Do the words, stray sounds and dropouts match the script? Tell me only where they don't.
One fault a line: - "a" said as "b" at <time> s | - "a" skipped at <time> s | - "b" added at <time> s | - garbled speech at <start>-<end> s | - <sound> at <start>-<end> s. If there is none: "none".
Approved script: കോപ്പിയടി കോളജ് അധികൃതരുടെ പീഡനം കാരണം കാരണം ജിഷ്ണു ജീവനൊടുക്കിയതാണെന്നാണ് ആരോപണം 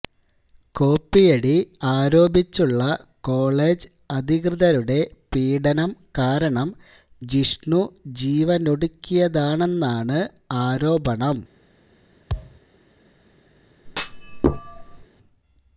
- "ആരോപിച്ചുള്ള" added at 1.9 s
- "കാരണം" skipped at 6.7 s
- thud at 12.3-12.6 s
- thud at 13.9-15.1 s